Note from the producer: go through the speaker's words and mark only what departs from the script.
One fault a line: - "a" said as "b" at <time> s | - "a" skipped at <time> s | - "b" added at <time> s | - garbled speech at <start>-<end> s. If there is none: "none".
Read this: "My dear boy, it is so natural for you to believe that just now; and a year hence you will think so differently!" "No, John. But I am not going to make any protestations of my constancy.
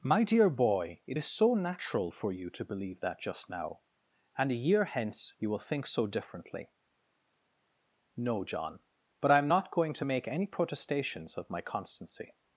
none